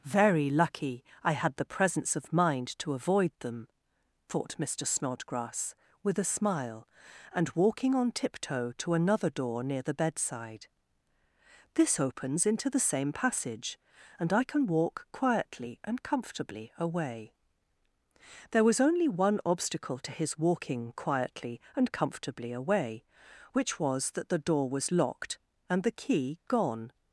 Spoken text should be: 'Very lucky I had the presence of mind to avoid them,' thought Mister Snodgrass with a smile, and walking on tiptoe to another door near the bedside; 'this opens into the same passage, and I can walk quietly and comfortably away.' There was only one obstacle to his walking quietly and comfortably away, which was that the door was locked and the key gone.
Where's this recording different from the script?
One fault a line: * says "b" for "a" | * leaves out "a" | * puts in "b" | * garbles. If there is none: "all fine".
all fine